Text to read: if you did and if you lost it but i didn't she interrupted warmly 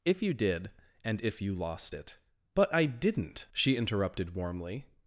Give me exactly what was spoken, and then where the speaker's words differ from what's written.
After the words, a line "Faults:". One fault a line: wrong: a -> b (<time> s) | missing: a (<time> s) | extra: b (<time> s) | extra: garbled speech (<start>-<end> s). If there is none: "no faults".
if you did and if you lost it but i didn't she interrupted warmly
Faults:
no faults